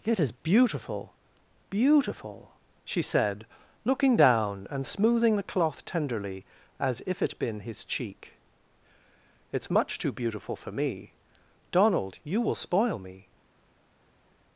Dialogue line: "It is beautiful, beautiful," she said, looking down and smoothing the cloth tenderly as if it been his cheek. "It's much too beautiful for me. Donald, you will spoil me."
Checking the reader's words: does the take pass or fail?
pass